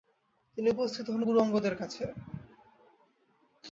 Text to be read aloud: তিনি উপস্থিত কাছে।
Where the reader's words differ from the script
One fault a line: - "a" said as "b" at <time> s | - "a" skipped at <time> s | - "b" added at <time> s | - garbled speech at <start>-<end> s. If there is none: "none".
- "হন গুরু অঙ্গদের" added at 1.1 s